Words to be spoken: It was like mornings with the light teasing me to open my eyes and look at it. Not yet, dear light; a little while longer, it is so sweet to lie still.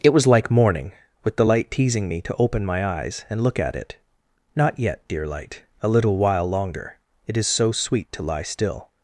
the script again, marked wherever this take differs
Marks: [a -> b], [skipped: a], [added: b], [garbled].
It was like [mornings -> morning] with the light teasing me to open my eyes and look at it. Not yet, dear light; a little while longer, it is so sweet to lie still.